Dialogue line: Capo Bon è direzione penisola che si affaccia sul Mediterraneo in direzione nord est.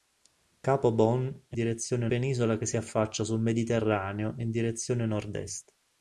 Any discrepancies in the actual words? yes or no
no